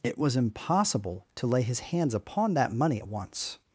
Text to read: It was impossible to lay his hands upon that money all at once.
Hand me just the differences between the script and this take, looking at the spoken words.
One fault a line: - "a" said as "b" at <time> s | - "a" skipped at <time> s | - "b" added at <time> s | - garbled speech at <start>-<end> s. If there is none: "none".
- "all" skipped at 3.0 s